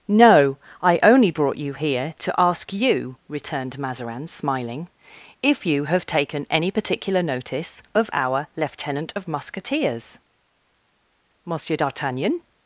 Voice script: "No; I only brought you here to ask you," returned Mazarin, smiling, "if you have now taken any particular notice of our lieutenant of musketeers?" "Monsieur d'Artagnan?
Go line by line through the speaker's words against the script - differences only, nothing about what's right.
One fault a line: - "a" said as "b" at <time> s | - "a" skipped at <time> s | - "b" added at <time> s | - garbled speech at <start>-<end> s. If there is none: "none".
- "now" skipped at 6.1 s